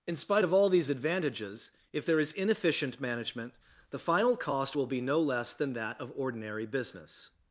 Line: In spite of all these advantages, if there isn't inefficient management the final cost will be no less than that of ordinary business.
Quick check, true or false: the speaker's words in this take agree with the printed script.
false